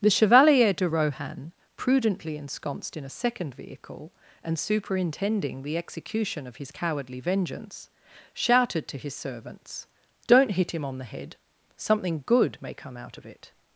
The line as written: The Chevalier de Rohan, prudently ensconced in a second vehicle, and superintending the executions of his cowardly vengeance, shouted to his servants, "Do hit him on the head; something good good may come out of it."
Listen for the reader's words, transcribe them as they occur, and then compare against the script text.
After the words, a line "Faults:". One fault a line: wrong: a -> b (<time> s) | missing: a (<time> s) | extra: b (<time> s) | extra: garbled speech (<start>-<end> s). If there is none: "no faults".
The Chevalier de Rohan, prudently ensconced in a second vehicle, and superintending the execution of his cowardly vengeance, shouted to his servants, "Don't hit him on the head; something good may come out of it."
Faults:
wrong: executions -> execution (5.8 s)
wrong: Do -> Don't (10.3 s)
missing: good (12.6 s)